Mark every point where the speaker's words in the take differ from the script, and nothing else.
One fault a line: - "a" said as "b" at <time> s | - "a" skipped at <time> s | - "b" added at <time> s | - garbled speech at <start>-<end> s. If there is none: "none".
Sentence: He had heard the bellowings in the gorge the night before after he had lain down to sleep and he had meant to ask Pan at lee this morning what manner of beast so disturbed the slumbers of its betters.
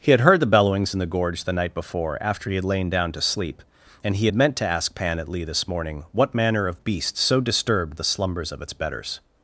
none